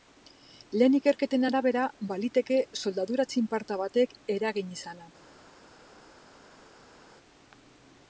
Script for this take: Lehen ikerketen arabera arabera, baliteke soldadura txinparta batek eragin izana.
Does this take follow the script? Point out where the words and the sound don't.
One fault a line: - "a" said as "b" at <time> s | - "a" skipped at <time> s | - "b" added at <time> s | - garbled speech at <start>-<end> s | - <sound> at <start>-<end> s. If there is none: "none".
- "arabera" skipped at 1.8 s